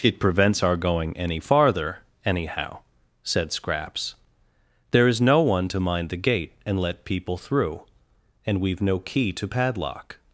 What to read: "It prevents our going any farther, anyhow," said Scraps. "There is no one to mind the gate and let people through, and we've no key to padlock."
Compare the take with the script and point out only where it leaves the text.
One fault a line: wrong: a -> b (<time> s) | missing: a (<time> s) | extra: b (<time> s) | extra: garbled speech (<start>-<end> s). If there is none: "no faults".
no faults